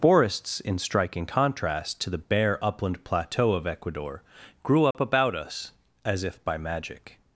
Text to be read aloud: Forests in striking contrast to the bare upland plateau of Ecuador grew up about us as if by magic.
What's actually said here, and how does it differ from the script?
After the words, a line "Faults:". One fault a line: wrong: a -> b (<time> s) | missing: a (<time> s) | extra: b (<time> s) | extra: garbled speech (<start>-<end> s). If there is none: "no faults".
Forests in striking contrast to the bare upland plateau of Ecuador grew up about us as if by magic.
Faults:
no faults